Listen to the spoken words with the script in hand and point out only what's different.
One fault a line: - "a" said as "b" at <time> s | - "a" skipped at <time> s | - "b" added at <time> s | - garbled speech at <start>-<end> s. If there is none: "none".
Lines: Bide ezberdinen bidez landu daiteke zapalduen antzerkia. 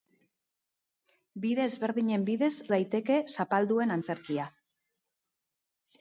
- "landu" skipped at 2.5 s